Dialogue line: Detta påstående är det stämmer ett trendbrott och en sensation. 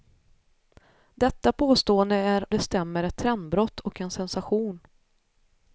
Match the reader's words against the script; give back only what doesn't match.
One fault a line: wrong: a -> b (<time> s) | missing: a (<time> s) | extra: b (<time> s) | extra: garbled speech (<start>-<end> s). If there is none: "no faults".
no faults